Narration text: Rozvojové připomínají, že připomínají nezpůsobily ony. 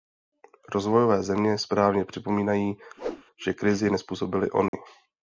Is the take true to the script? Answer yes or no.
no